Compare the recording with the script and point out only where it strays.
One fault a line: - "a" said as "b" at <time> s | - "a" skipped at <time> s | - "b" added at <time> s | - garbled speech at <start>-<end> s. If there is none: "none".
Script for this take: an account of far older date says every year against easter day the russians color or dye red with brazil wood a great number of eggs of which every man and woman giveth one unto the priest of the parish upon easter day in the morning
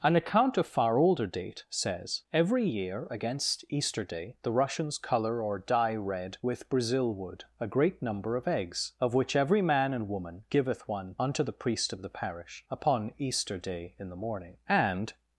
- "and" added at 14.7 s